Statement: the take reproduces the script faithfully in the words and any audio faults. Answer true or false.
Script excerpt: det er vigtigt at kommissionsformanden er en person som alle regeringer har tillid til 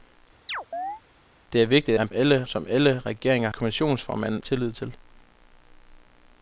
false